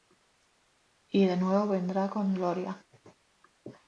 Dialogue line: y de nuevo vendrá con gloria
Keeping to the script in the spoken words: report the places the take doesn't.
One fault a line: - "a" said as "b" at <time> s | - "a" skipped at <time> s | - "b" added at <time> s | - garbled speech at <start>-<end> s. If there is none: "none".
none